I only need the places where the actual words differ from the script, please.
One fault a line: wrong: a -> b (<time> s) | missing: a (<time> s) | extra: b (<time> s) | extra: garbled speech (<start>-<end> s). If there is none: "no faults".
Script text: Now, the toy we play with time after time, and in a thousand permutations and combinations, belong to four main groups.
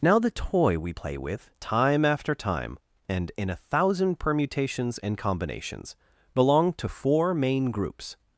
no faults